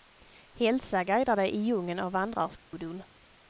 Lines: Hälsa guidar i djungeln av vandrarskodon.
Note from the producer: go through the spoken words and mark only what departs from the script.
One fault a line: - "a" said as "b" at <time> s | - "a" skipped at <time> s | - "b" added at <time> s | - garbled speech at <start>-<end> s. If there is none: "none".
- "dig" added at 1.4 s